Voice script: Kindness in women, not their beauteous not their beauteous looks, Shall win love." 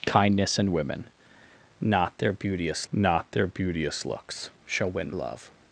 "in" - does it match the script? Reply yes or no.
yes